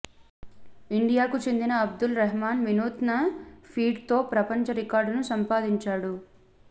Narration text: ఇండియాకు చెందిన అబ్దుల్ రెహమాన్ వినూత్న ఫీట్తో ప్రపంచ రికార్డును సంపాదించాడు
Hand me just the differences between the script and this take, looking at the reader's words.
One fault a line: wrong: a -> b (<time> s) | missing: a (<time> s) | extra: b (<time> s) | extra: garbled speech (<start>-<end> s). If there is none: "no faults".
no faults